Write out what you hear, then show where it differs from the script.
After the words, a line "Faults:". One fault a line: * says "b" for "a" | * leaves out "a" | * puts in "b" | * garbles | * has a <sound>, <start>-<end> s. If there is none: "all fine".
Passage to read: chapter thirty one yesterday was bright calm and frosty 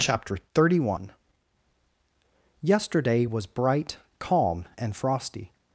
chapter thirty one yesterday was bright calm and frosty
Faults:
all fine